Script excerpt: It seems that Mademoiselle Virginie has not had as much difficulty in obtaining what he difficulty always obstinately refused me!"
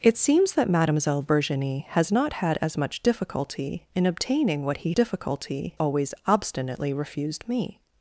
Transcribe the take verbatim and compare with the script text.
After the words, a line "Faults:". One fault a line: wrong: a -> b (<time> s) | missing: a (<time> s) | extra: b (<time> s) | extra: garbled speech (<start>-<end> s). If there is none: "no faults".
It seems that Mademoiselle Virginie has not had as much difficulty in obtaining what he difficulty always obstinately refused me!"
Faults:
no faults